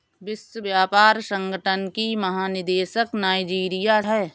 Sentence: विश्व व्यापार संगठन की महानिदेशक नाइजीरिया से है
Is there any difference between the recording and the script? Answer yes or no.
yes